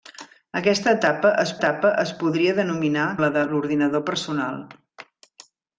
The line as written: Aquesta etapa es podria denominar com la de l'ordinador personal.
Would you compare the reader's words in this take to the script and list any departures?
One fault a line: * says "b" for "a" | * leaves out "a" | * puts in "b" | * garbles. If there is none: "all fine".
* puts in "etapa es"
* leaves out "com"